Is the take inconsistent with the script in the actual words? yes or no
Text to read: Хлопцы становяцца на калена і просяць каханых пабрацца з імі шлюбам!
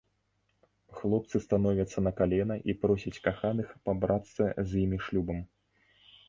no